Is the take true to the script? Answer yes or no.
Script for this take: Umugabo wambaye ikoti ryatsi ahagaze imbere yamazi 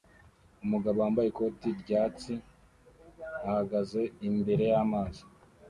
yes